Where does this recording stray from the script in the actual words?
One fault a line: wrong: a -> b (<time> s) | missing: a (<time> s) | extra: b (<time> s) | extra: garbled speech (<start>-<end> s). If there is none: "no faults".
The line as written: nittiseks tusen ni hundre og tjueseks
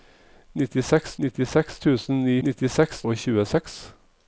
extra: nittiseks (1.2 s)
wrong: hundre -> nittiseks (2.5 s)